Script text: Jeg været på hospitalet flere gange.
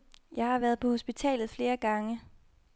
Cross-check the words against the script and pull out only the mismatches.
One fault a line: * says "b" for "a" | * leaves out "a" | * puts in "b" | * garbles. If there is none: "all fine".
* puts in "har"